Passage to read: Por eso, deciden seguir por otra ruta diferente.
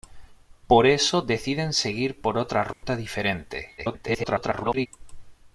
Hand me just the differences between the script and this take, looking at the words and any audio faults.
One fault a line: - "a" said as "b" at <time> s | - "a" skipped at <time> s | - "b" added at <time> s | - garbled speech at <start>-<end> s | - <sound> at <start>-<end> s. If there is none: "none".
- dropout at 2.7-2.8 s
- garbled speech at 3.8-4.9 s